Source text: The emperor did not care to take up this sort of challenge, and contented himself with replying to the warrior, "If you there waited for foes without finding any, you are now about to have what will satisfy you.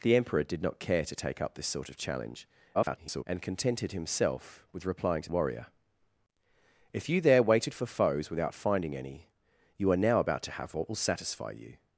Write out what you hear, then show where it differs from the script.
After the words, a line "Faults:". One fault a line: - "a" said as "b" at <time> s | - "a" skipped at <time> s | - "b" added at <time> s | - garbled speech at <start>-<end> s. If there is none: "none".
The emperor did not care to take up this sort of challenge, [garbled] and contented himself with replying to warrior, "If you there waited for foes without finding any, you are now about to have what will satisfy you.
Faults:
- garbled speech at 2.7-3.2 s
- "the" skipped at 5.3 s